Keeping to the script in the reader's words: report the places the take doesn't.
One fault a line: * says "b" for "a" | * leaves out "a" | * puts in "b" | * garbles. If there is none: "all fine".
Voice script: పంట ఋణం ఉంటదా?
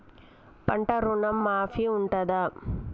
* puts in "మాఫీ"